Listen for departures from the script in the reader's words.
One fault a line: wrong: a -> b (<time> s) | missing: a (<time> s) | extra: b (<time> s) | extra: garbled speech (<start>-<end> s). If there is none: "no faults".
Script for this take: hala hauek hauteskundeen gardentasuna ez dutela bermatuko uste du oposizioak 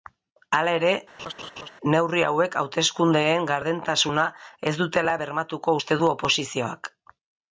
extra: ere neurri (0.8 s)